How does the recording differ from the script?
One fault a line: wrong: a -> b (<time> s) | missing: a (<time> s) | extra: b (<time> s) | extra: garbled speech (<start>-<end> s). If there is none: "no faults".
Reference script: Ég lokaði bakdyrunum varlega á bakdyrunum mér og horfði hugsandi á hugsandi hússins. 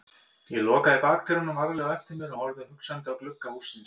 wrong: bakdyrunum -> eftir (2.0 s)
wrong: hugsandi -> glugga (3.2 s)